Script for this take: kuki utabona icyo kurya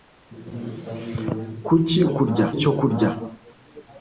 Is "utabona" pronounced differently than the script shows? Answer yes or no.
yes